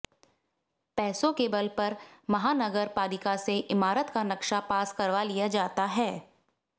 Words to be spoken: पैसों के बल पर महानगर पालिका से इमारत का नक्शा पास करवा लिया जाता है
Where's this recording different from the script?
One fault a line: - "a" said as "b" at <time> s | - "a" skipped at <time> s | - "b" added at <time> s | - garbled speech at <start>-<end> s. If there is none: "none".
none